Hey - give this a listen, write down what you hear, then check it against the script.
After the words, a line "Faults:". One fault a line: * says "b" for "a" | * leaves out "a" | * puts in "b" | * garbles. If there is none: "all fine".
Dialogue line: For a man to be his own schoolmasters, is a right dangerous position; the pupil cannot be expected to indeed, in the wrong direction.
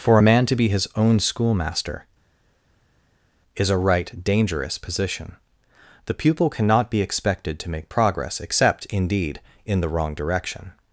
For a man to be his own schoolmaster, is a right dangerous position; the pupil cannot be expected to make progress except, indeed, in the wrong direction.
Faults:
* says "schoolmaster" for "schoolmasters"
* puts in "make progress except"